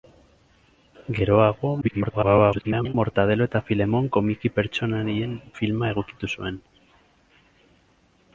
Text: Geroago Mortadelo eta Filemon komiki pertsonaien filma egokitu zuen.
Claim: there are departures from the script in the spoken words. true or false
true